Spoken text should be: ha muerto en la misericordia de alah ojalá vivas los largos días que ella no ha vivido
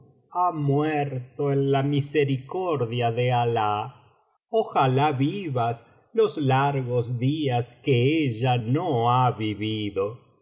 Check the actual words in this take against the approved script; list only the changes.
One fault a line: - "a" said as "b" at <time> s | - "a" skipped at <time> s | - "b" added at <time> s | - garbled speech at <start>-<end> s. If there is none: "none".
none